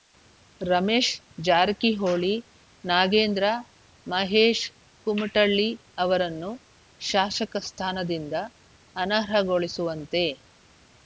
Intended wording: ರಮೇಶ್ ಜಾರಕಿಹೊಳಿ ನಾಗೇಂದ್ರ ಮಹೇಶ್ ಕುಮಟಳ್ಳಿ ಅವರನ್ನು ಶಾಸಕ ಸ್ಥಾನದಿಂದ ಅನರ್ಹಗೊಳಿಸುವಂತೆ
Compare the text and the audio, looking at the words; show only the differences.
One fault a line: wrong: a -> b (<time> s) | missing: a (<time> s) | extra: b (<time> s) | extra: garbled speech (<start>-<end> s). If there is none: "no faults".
no faults